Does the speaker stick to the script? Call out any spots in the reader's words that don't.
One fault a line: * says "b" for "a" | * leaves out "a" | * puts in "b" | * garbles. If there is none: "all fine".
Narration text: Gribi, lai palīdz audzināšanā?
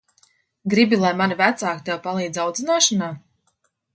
* puts in "mani vecāki tev"